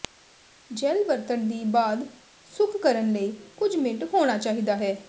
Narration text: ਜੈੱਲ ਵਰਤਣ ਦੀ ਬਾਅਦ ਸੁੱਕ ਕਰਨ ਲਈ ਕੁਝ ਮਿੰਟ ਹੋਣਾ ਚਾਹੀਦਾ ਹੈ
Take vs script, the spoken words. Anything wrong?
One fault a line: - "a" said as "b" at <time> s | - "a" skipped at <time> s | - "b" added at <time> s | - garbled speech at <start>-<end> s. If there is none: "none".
none